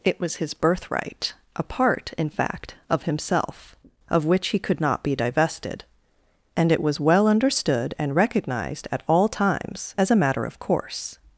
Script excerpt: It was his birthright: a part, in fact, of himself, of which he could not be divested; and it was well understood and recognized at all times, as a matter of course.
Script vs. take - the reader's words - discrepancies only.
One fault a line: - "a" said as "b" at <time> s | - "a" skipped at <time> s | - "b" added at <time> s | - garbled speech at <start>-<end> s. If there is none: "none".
none